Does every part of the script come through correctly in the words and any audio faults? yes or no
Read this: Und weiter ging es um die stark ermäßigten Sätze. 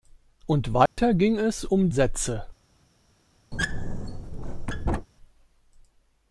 no